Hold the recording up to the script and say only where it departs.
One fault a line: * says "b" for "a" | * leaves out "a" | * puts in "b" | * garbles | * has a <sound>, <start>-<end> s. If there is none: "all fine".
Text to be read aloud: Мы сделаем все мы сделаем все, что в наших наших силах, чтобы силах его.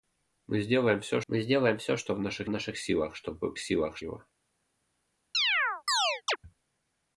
* has a chirp, 5.3-6.4 s